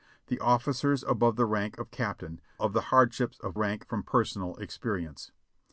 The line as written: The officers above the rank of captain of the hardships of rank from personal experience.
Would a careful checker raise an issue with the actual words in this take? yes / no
no